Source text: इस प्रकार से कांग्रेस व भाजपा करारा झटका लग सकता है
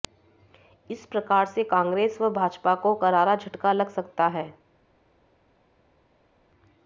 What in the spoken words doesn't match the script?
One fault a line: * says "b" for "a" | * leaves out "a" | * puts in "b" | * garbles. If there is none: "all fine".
* puts in "को"